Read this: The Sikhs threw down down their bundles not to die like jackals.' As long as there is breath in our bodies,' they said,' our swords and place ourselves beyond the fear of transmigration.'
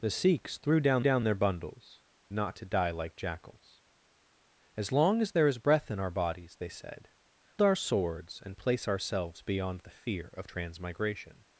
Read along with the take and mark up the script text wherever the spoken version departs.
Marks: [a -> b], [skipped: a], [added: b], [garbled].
The Sikhs threw down down their bundles not to die like jackals.' As long as there is breath in our bodies,' they said,' our swords and place ourselves beyond the fear of transmigration.'